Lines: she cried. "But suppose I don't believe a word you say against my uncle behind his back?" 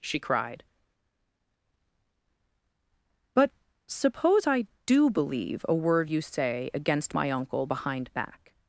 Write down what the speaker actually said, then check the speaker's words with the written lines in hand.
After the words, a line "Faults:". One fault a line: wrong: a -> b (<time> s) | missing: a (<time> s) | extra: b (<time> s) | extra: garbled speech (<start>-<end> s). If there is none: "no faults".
she cried. "But suppose I do believe a word you say against my uncle behind back?"
Faults:
wrong: don't -> do (4.8 s)
missing: his (8.1 s)